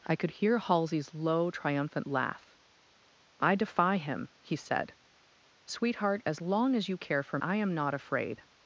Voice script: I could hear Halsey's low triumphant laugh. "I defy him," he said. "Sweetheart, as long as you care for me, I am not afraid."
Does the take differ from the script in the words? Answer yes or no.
yes